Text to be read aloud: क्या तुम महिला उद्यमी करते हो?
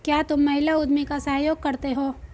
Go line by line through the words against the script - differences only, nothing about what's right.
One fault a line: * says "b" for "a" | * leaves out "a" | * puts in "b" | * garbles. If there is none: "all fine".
* puts in "का सहयोग"